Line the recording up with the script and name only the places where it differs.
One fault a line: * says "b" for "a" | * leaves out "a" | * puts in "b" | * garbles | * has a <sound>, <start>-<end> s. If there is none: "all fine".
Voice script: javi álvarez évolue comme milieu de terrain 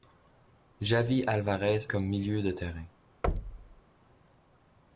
* leaves out "évolue"
* has a thud, 3.2-3.8 s